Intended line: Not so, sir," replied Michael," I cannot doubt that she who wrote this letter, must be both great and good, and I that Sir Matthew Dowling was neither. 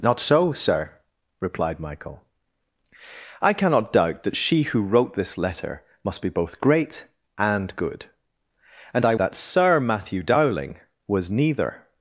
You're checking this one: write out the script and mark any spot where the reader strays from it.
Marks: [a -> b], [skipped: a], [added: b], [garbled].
Not so, sir," replied Michael," I cannot doubt that she who wrote this letter, must be both great and good, and I that Sir Matthew Dowling was neither.